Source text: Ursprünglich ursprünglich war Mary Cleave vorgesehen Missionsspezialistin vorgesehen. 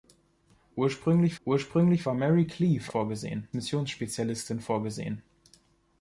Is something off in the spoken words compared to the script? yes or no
no